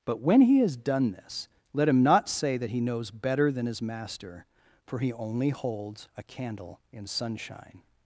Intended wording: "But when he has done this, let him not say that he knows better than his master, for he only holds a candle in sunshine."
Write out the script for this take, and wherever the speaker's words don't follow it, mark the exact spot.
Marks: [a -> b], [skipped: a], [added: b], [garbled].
"But when he has done this, let him not say that he knows better than his master, for he only holds a candle in sunshine."